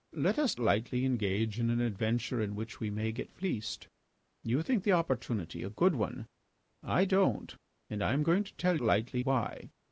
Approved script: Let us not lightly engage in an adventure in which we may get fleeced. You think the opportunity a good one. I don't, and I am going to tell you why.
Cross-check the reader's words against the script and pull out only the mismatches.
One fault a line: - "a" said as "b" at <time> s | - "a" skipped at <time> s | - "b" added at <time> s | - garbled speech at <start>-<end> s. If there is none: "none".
- "not" skipped at 0.6 s
- "you" said as "lightly" at 8.8 s